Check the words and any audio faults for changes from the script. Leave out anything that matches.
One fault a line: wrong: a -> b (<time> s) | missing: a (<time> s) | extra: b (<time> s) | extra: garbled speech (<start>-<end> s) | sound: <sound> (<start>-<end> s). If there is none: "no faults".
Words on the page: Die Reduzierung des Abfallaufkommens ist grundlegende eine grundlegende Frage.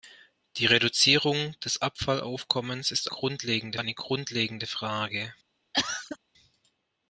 sound: cough (5.7-6.2 s)